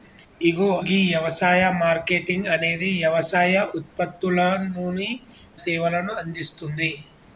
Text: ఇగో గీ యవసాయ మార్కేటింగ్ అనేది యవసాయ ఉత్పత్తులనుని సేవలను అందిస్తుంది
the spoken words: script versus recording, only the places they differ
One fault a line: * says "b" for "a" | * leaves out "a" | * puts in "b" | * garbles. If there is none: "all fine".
all fine